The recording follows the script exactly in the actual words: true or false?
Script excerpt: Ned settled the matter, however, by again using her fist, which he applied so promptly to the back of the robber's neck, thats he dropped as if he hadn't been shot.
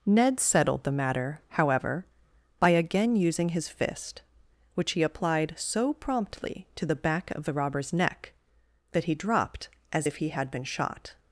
false